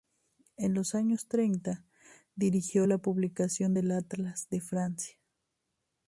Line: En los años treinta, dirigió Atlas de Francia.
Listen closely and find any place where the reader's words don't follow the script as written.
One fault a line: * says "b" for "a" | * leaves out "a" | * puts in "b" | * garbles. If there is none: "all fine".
* puts in "la publicación del"